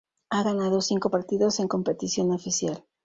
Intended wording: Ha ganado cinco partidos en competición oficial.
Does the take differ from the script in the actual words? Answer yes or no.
no